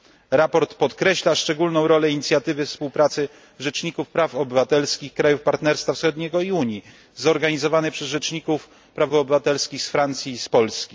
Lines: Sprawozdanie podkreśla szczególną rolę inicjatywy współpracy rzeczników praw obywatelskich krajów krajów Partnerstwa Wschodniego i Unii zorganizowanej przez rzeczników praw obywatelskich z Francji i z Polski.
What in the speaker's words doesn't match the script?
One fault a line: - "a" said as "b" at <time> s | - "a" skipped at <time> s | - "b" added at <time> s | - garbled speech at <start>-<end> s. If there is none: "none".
- "krajów" skipped at 5.4 s